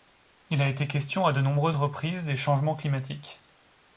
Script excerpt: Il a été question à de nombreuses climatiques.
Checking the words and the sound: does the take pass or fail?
fail